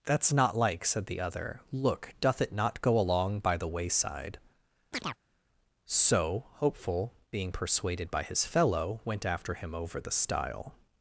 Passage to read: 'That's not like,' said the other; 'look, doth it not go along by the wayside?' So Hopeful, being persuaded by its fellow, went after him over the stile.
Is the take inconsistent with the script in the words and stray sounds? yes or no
yes